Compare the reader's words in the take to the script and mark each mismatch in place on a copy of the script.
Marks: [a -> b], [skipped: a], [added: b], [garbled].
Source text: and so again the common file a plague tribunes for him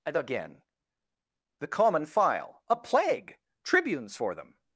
and [skipped: so] again the common file a plague tribunes for [him -> them]